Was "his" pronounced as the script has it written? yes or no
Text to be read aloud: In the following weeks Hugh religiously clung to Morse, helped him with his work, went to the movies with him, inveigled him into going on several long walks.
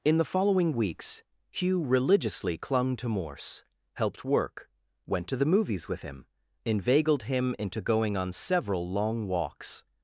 no